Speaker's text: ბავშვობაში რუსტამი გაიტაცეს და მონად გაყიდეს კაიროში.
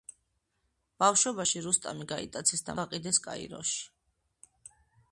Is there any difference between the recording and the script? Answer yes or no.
yes